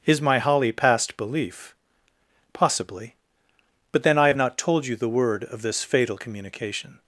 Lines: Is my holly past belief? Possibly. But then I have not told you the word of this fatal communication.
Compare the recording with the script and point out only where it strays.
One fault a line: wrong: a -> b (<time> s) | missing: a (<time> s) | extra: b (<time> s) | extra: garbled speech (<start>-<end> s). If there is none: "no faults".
no faults